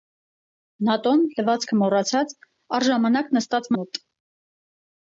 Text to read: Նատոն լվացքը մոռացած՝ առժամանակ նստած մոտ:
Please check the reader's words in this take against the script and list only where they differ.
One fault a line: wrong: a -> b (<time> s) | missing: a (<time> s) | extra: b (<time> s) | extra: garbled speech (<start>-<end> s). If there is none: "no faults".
no faults